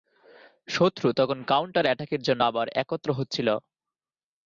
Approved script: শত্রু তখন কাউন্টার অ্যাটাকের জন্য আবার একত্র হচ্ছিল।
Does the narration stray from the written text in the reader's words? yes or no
no